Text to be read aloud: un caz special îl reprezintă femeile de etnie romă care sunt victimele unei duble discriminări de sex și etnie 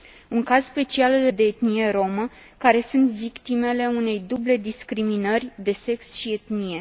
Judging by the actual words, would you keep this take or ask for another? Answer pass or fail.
fail